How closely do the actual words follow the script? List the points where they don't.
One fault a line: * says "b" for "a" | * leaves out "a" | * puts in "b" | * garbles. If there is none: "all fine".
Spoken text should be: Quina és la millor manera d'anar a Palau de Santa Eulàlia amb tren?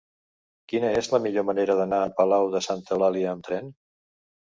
all fine